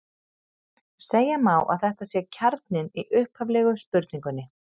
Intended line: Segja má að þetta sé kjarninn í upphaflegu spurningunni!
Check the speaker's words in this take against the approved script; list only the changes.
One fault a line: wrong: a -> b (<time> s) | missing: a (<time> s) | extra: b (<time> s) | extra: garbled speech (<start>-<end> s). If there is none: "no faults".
no faults